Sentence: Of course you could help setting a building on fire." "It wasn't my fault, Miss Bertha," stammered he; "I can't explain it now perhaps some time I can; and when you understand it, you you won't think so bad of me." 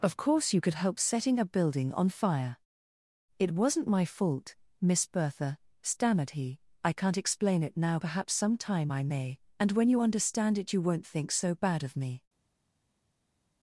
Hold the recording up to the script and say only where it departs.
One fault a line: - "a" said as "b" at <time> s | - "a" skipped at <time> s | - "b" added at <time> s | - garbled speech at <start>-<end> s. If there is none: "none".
- "can" said as "may" at 9.0 s
- "you" skipped at 10.8 s